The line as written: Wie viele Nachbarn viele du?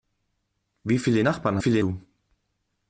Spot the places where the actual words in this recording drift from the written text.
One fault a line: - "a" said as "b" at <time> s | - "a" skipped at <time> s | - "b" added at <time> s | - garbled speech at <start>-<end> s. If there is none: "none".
none